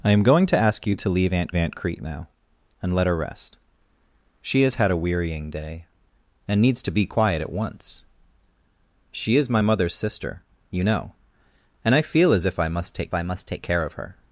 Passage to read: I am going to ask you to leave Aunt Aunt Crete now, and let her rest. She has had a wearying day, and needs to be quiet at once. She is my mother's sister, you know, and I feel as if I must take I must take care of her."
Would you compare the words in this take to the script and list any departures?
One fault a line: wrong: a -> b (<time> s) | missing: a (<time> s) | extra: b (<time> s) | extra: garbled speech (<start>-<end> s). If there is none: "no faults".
no faults